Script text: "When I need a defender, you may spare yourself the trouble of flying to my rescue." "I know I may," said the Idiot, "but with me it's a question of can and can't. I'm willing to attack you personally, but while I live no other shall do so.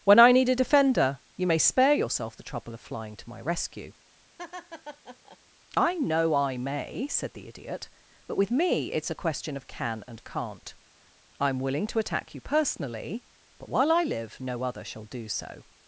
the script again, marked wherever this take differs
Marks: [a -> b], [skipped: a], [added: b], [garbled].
"When I need a defender, you may spare yourself the trouble of flying to my rescue." "I know I may," said the Idiot, "but with me it's a question of can and can't. I'm willing to attack you personally, but while I live no other shall do so.